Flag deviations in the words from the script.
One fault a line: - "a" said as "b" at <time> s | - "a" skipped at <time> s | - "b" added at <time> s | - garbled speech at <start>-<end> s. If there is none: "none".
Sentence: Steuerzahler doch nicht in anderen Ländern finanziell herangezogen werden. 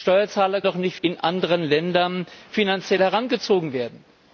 none